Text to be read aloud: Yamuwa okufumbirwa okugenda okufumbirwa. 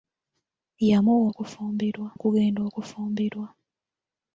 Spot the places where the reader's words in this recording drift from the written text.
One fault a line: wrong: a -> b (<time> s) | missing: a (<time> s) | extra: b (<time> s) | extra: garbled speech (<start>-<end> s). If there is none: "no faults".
no faults